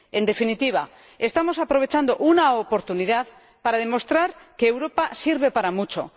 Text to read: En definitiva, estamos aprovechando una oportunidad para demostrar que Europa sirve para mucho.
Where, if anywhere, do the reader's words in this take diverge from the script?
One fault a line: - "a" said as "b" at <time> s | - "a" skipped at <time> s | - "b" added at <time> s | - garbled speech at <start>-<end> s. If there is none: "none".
none